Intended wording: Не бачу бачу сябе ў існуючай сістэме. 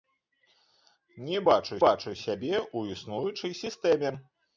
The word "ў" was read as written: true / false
true